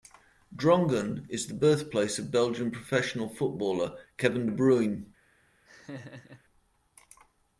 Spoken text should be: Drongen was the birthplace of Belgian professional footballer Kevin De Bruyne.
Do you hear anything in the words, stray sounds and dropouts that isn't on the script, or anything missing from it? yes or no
yes